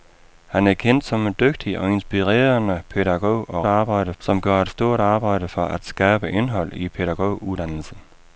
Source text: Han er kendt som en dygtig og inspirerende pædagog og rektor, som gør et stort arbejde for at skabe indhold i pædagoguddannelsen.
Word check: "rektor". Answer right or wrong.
wrong